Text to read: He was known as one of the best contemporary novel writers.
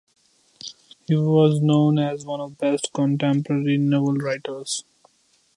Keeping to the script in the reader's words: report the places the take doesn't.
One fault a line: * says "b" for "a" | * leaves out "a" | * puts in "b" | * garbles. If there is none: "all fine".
* leaves out "the"